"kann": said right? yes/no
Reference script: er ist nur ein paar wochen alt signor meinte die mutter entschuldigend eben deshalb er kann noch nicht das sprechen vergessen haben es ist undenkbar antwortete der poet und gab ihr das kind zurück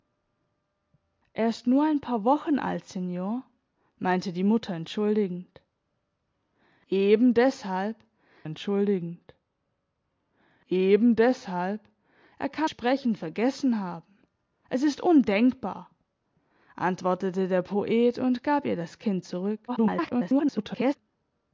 no